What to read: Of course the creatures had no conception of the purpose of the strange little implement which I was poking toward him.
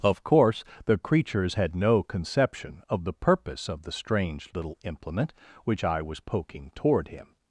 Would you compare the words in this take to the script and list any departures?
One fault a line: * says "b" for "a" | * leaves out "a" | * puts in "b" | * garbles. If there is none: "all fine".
all fine